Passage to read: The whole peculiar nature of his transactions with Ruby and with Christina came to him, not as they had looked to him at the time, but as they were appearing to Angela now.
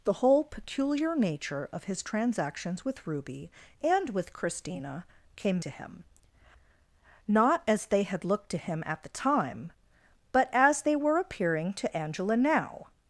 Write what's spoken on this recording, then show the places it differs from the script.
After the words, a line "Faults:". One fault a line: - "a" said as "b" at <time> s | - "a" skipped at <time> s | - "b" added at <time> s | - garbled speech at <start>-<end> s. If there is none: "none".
The whole peculiar nature of his transactions with Ruby and with Christina came to him, not as they had looked to him at the time, but as they were appearing to Angela now.
Faults:
none